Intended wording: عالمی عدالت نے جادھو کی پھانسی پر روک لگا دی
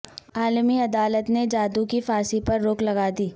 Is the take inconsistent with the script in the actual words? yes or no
no